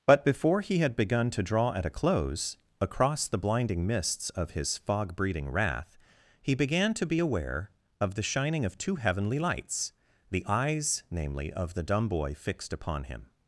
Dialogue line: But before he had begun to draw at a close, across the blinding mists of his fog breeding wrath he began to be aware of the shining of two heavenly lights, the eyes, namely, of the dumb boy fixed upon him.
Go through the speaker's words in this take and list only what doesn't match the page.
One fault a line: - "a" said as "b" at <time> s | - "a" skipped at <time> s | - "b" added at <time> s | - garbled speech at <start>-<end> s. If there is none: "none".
none